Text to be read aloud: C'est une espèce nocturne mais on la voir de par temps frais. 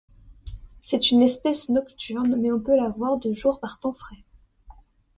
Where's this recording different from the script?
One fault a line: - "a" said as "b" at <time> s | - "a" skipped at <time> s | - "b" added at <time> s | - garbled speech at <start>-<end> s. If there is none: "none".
- "peut" added at 2.6 s
- "jour" added at 3.3 s